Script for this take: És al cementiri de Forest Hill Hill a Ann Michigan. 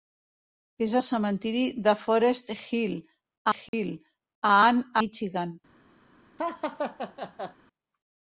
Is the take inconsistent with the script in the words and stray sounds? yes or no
yes